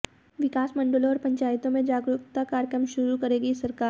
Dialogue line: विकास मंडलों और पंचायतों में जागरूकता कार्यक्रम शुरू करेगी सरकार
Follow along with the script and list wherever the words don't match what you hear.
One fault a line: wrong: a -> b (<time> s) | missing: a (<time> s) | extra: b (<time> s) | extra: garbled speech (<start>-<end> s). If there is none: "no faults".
no faults